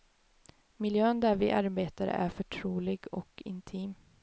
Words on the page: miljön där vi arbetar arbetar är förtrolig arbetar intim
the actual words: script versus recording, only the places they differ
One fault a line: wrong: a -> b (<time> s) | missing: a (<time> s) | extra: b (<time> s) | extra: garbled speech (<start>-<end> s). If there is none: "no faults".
missing: arbetar (2.1 s)
wrong: arbetar -> och (3.1 s)